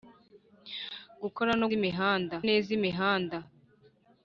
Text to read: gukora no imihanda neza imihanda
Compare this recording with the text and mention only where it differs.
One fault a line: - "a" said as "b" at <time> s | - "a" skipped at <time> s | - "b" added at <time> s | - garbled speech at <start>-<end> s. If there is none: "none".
none